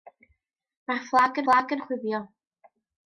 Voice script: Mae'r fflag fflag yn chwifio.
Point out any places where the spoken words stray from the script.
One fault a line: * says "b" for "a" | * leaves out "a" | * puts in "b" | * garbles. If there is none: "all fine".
all fine